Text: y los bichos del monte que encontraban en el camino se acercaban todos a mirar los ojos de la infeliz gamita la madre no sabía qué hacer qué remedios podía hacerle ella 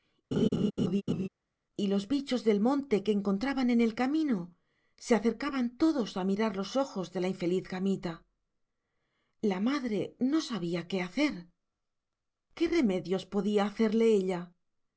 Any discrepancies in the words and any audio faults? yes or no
yes